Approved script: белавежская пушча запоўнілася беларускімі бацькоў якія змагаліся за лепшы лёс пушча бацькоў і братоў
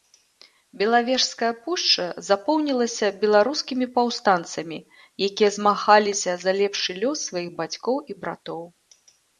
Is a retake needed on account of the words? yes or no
yes